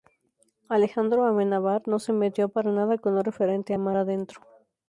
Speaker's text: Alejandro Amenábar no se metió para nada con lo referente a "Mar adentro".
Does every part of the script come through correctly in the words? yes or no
yes